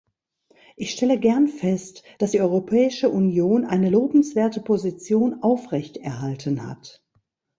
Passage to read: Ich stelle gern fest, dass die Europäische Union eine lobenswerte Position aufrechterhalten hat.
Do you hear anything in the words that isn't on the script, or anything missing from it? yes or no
no